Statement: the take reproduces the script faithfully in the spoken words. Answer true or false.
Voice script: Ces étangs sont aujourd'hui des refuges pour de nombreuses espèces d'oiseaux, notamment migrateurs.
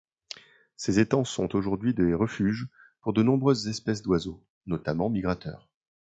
true